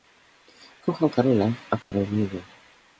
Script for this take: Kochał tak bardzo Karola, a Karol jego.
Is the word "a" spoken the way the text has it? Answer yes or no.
yes